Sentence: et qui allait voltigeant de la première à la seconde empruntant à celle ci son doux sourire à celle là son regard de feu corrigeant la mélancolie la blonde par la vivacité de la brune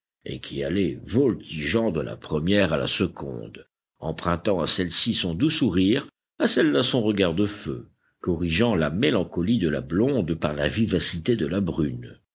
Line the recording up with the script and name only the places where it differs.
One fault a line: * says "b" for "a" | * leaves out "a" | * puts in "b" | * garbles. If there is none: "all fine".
* puts in "de"